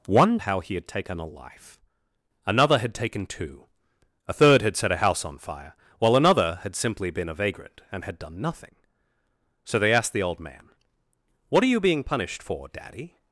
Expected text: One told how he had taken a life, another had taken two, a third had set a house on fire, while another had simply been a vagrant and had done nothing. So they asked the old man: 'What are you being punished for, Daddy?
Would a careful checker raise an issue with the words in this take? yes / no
yes